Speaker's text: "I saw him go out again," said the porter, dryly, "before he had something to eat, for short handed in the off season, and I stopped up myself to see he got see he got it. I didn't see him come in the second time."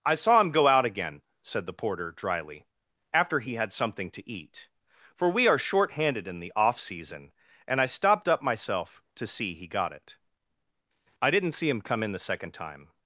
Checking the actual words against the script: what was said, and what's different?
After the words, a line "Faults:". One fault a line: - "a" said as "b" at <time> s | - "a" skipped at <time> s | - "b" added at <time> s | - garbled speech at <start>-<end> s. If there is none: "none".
"I saw him go out again," said the porter, dryly, "after he had something to eat, for we are short handed in the off season, and I stopped up myself to see he got it. I didn't see him come in the second time."
Faults:
- "before" said as "after" at 3.1 s
- "we are" added at 5.3 s
- "see he got" skipped at 9.9 s